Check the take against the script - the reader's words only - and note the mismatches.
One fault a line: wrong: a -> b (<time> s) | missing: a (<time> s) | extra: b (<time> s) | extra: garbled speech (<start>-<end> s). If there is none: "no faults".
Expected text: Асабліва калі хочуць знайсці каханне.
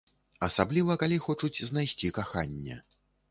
no faults